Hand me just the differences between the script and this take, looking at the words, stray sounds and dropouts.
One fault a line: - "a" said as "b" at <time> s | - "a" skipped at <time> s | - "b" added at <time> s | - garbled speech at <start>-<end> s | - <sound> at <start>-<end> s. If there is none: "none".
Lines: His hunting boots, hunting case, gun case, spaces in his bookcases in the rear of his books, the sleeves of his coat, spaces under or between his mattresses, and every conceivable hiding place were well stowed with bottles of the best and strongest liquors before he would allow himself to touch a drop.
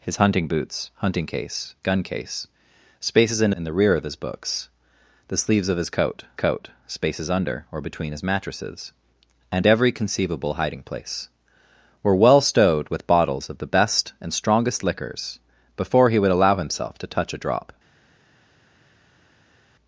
- "his bookcases" skipped at 3.5 s
- "coat" added at 6.3 s